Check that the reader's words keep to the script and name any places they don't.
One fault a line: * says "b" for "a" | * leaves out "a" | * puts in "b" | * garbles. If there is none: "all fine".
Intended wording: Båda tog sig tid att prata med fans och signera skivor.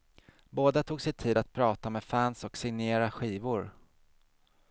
all fine